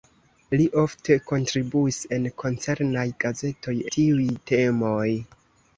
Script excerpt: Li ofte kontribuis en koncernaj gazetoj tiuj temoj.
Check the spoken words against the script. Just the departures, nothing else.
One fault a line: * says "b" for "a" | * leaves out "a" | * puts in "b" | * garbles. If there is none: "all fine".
all fine